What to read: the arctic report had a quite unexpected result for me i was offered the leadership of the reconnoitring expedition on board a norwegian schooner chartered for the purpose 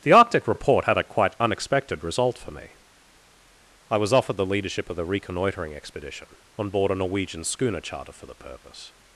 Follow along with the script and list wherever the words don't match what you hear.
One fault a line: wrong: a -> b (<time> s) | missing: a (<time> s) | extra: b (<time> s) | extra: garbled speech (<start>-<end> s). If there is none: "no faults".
wrong: chartered -> charter (7.8 s)